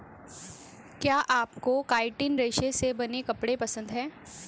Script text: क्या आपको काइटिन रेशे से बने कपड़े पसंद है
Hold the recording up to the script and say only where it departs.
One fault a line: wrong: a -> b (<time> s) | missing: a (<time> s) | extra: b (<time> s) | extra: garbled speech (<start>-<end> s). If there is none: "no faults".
no faults